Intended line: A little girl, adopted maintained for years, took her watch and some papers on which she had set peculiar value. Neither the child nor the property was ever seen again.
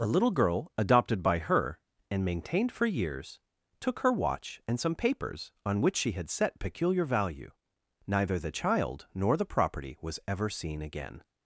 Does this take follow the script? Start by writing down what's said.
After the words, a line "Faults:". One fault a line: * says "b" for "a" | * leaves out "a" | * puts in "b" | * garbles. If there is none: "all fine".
A little girl, adopted by her, and maintained for years, took her watch and some papers on which she had set peculiar value. Neither the child nor the property was ever seen again.
Faults:
* puts in "by her and"